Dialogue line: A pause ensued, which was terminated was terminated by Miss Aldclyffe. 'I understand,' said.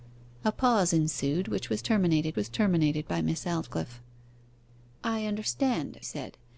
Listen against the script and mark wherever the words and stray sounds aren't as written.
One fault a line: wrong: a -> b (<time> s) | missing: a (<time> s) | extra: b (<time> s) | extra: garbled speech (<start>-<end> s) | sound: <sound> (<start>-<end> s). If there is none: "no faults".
no faults